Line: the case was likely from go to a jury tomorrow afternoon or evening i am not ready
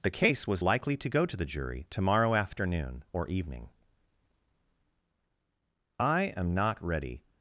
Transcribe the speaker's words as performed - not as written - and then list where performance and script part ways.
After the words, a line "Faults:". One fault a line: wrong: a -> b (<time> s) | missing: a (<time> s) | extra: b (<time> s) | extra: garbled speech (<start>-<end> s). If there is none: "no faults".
the case was likely to go to the jury tomorrow afternoon or evening i am not ready
Faults:
wrong: from -> to (0.9 s)
wrong: a -> the (1.3 s)